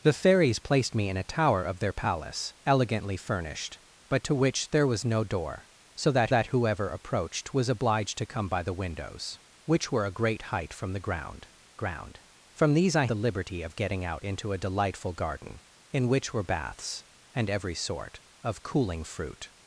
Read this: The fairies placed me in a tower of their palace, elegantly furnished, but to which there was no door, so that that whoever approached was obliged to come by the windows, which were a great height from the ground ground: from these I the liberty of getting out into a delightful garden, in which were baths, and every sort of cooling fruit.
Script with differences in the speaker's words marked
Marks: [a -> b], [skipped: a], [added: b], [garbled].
The fairies placed me in a tower of their palace, elegantly furnished, but to which there was no door, so that that whoever approached was obliged to come by the windows, which were a great height from the ground ground: from these I the liberty of getting out into a delightful garden, in which were baths, and every sort of cooling fruit.